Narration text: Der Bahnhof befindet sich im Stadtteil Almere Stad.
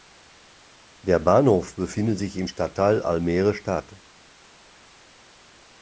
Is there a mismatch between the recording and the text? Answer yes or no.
no